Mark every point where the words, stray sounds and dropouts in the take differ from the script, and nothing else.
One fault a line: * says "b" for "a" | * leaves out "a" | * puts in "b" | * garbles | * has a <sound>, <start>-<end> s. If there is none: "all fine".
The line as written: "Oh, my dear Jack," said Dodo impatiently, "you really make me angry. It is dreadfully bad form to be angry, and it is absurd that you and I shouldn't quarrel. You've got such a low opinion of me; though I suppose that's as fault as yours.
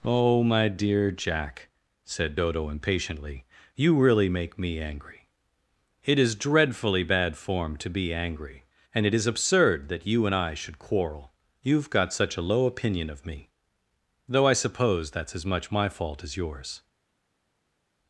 * says "should" for "shouldn't"
* puts in "much my"